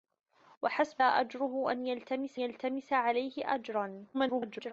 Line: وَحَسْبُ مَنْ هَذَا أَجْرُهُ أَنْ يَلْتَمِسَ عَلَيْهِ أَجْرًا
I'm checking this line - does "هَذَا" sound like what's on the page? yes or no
no